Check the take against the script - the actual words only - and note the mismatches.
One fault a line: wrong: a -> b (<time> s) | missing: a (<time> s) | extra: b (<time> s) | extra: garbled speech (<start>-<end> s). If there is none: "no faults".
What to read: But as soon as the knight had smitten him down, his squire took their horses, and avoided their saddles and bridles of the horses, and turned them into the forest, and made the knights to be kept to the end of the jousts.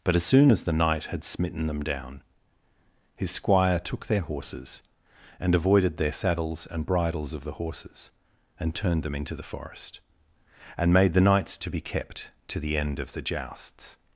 wrong: him -> them (1.7 s)